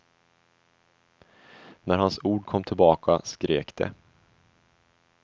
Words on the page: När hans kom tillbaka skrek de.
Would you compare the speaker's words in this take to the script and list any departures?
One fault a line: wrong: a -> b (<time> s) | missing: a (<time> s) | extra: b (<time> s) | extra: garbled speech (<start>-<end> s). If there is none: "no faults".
extra: ord (2.2 s)